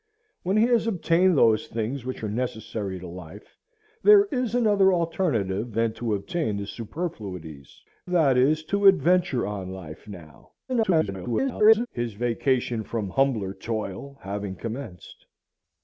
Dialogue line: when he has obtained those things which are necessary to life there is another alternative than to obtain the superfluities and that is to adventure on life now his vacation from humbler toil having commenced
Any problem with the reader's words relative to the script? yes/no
yes